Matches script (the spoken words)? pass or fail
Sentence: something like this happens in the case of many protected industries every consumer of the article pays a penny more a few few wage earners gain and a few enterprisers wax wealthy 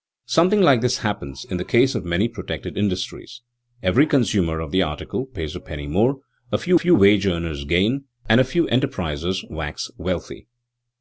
pass